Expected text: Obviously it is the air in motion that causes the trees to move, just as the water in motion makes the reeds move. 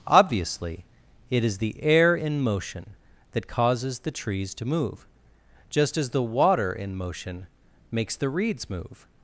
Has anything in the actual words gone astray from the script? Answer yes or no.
no